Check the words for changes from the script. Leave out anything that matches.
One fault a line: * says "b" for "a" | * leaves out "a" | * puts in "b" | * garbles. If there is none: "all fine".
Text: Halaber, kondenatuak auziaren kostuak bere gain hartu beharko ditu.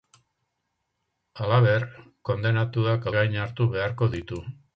* leaves out "auziaren kostuak bere"